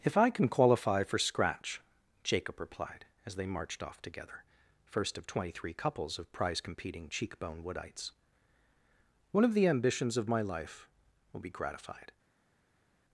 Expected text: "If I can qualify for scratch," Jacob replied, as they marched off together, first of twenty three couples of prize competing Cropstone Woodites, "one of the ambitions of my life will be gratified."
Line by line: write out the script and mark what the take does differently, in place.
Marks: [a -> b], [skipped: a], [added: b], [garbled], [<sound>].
"If I can qualify for scratch," Jacob replied, as they marched off together, first of twenty three couples of prize competing [Cropstone -> Cheekbone] Woodites, "one of the ambitions of my life will be gratified."